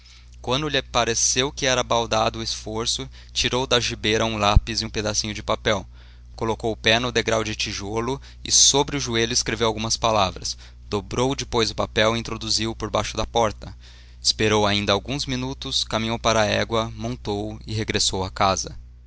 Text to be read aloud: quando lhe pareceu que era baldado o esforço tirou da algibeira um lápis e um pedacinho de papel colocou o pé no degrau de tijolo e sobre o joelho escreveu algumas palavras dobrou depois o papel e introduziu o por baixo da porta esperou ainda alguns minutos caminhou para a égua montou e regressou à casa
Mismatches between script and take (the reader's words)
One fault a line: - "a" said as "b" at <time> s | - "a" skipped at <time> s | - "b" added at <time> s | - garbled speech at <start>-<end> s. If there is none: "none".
none